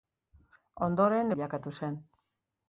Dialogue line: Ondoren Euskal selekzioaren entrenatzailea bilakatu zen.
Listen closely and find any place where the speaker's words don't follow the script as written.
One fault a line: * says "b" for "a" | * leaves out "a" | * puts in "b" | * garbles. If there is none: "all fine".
* leaves out "Euskal selekzioaren entrenatzailea"